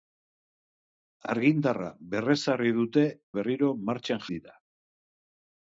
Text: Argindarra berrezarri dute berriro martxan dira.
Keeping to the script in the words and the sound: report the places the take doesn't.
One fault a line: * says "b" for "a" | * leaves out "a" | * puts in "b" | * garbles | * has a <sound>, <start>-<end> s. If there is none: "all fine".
all fine